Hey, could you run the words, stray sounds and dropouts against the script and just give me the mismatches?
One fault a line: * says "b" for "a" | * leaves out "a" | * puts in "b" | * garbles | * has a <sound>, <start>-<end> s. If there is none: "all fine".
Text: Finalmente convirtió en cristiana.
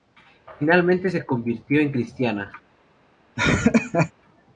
* puts in "se"
* has a laugh, 3.4-4.1 s